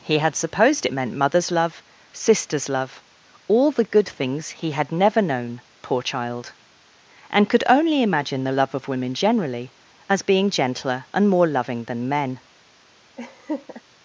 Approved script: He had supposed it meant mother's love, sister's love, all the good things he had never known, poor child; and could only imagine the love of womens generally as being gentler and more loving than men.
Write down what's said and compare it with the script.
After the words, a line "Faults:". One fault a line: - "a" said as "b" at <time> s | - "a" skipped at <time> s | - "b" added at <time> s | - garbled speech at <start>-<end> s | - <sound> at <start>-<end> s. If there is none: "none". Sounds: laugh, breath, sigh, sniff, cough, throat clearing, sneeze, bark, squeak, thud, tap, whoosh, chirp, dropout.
He had supposed it meant mother's love, sister's love, all the good things he had never known, poor child; and could only imagine the love of women generally as being gentler and more loving than men.
Faults:
- "womens" said as "women" at 8.9 s
- laugh at 13.2-13.8 s